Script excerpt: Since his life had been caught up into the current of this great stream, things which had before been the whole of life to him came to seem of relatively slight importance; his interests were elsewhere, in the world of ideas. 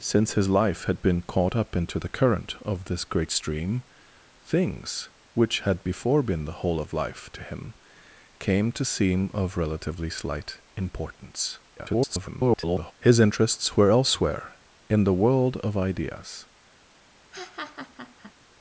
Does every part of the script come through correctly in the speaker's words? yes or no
no